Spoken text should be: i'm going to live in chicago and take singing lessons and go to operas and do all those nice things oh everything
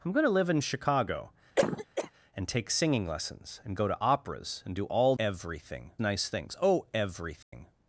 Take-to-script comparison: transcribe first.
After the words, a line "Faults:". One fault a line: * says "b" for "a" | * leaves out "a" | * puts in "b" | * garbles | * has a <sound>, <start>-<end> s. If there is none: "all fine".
i'm going to live in chicago and take singing lessons and go to operas and do all everything nice things oh everything
Faults:
* has a cough, 1.6-2.1 s
* says "everything" for "those"
* has a dropout, 7.4-7.5 s